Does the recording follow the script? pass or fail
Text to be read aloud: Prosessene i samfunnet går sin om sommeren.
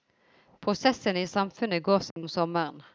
pass